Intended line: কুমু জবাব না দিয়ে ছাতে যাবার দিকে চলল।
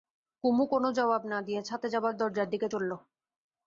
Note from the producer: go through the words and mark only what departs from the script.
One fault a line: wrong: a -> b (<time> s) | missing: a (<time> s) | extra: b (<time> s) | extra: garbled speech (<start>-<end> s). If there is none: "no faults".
extra: কোনো (0.7 s)
extra: দরজার (2.2 s)